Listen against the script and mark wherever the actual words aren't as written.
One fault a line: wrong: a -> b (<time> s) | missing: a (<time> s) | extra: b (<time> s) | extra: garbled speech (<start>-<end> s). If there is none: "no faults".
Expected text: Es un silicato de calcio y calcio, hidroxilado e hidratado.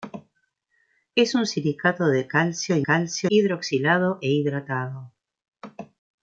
no faults